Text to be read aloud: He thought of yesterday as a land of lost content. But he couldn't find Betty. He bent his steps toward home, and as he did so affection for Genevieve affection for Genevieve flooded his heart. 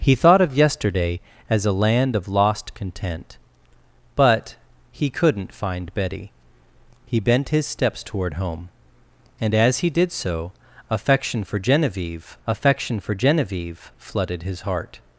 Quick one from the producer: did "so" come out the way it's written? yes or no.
yes